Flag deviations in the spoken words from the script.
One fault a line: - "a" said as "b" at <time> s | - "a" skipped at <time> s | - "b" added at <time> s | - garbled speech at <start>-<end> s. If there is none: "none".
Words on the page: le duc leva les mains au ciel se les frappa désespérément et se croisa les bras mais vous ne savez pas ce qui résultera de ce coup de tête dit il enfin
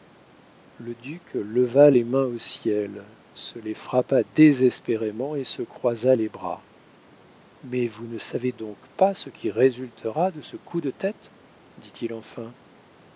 - "donc" added at 8.5 s